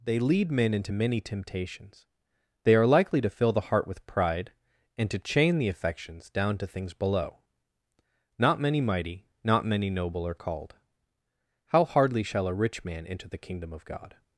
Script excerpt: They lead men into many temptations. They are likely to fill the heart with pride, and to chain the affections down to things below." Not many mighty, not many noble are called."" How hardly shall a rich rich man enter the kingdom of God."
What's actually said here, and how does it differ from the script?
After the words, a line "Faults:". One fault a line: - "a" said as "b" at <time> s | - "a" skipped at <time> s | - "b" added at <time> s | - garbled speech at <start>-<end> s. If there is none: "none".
They lead men into many temptations. They are likely to fill the heart with pride, and to chain the affections down to things below." Not many mighty, not many noble are called."" How hardly shall a rich man enter the kingdom of God."
Faults:
- "rich" skipped at 12.8 s